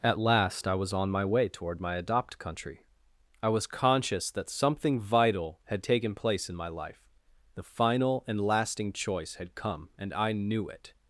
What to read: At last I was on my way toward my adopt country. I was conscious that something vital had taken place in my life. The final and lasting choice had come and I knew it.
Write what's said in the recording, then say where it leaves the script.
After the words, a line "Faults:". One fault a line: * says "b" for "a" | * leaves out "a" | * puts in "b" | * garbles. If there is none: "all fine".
At last I was on my way toward my adopt country. I was conscious that something vital had taken place in my life. The final and lasting choice had come and I knew it.
Faults:
all fine